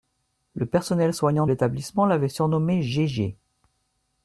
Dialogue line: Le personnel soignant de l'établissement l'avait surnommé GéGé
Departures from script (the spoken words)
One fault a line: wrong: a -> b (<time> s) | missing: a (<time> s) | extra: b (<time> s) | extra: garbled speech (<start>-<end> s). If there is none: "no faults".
missing: de (1.4 s)